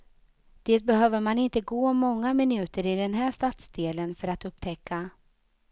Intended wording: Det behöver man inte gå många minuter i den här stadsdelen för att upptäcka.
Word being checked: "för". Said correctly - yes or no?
yes